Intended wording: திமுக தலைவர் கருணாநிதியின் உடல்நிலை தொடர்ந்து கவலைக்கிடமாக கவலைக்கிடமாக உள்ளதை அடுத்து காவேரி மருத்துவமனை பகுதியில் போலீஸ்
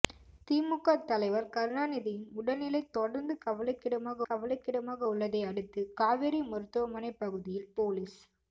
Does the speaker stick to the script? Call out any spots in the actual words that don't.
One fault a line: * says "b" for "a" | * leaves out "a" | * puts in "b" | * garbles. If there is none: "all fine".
all fine